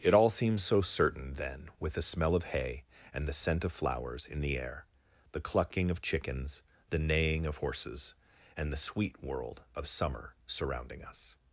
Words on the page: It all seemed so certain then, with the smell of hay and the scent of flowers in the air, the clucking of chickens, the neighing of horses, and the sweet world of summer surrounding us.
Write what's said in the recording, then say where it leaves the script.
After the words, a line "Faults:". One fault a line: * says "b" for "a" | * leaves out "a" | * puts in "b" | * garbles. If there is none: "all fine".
It all seemed so certain then, with the smell of hay and the scent of flowers in the air, the clucking of chickens, the neighing of horses, and the sweet world of summer surrounding us.
Faults:
all fine